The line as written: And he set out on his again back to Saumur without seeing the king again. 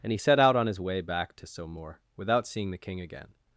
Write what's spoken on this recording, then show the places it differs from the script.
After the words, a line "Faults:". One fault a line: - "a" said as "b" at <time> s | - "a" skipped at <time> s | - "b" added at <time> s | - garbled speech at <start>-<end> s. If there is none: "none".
And he set out on his way back to Saumur without seeing the king again.
Faults:
- "again" said as "way" at 0.8 s